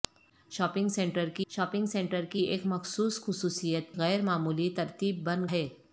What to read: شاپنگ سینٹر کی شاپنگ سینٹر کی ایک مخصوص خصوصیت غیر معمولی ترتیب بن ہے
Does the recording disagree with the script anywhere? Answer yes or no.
no